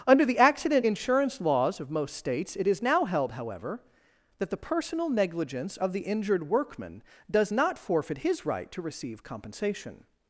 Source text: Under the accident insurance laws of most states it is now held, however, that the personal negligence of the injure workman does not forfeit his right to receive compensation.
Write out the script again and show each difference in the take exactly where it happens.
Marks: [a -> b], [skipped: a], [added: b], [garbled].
Under the accident insurance laws of most states it is now held, however, that the personal negligence of the [injure -> injured] workman does not forfeit his right to receive compensation.